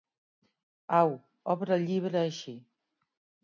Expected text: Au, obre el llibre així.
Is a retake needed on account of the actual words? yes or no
no